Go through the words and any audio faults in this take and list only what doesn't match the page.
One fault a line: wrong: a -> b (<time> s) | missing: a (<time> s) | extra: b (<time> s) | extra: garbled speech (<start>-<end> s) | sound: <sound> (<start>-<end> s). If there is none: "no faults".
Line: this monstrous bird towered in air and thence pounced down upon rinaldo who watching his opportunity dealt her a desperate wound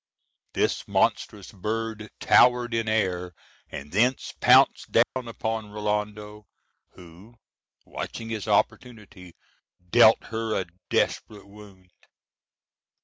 sound: dropout (5.0-5.2 s)